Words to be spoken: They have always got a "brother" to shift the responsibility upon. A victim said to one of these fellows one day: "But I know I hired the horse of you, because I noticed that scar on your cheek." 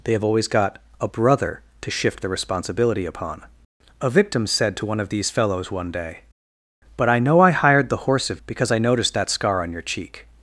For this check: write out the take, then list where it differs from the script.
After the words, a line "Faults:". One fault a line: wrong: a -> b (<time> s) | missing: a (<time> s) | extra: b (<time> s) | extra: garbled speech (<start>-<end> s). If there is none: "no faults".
They have always got a "brother" to shift the responsibility upon. A victim said to one of these fellows one day: "But I know I hired the horse of because I noticed that scar on your cheek."
Faults:
missing: you (8.4 s)